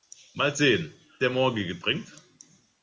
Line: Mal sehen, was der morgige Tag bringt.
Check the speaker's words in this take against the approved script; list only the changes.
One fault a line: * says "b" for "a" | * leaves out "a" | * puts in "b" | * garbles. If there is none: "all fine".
* leaves out "was"
* leaves out "Tag"